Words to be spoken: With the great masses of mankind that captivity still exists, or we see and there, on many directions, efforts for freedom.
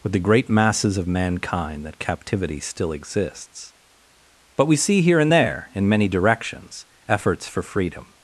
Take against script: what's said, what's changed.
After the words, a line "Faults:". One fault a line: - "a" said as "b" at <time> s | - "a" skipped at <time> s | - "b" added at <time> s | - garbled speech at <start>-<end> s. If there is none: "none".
With the great masses of mankind that captivity still exists, but we see here and there, in many directions, efforts for freedom.
Faults:
- "or" said as "but" at 4.5 s
- "here" added at 5.0 s
- "on" said as "in" at 5.7 s